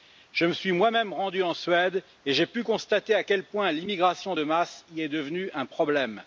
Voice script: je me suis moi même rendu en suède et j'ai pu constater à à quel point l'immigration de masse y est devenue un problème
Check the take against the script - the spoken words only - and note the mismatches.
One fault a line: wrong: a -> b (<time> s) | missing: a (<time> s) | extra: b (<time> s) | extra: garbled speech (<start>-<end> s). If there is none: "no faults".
missing: à (3.2 s)